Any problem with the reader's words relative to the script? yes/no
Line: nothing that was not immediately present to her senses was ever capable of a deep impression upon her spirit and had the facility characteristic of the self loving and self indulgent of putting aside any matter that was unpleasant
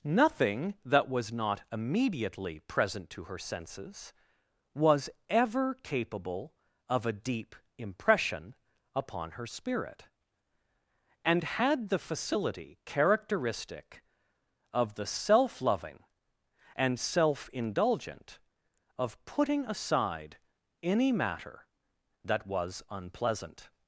no